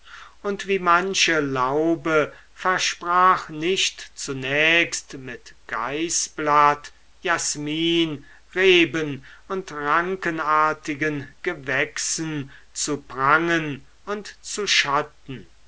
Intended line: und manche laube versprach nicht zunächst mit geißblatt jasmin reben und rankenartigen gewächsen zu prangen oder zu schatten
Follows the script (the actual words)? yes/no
no